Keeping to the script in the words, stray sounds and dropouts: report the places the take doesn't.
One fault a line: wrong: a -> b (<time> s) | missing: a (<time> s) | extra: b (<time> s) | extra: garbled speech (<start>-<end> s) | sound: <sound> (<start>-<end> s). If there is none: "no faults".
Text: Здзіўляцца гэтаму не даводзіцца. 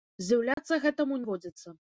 sound: dropout (0.5-0.6 s)
missing: не (1.2 s)